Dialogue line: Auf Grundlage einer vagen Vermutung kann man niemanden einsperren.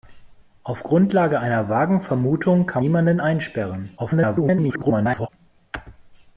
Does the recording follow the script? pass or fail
fail